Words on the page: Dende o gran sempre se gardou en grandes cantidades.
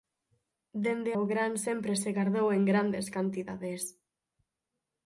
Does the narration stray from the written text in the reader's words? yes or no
no